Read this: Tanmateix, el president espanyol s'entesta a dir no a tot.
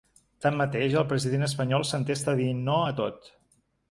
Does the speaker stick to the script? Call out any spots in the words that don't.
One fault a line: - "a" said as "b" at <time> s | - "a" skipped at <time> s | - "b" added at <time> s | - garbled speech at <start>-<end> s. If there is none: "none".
none